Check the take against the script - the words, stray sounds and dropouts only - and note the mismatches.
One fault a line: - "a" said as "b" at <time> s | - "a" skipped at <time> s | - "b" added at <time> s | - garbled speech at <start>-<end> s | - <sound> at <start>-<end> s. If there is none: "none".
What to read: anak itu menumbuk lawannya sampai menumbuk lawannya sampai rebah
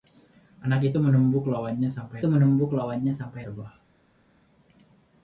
none